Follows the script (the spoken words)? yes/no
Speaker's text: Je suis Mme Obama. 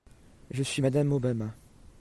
yes